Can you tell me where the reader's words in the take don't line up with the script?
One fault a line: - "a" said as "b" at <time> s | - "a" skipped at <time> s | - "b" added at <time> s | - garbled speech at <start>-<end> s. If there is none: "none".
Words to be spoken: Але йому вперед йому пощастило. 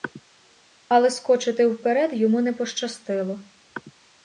- "йому" said as "скочити" at 1.1 s
- "не" added at 2.4 s